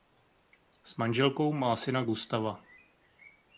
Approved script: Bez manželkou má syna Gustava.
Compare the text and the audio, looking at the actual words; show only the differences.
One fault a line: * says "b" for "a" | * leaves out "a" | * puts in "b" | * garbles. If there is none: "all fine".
* says "S" for "Bez"